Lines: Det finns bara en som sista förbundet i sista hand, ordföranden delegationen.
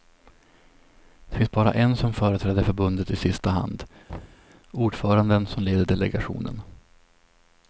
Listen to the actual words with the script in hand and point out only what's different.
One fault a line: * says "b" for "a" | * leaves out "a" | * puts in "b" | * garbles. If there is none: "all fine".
* says "företräder" for "sista"
* puts in "som leder"